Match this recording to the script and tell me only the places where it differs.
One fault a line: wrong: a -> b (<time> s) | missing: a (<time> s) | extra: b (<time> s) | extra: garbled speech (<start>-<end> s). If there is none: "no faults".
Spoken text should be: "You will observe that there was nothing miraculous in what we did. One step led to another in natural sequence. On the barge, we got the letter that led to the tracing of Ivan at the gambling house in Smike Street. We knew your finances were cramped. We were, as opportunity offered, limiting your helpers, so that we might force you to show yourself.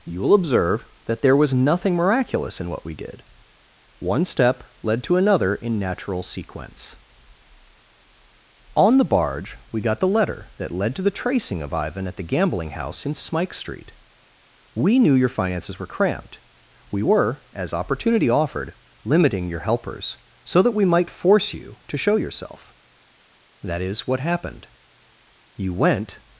extra: That is what happened You went (23.6 s)